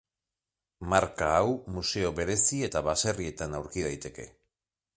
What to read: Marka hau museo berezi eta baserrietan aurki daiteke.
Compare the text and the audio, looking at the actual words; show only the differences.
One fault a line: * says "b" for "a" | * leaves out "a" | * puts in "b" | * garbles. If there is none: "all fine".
all fine